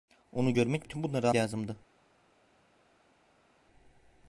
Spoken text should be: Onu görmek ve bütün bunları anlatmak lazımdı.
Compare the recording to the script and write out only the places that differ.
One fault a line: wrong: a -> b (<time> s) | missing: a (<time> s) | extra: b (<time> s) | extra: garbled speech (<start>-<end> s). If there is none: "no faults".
missing: ve (0.9 s)
missing: anlatmak (1.3 s)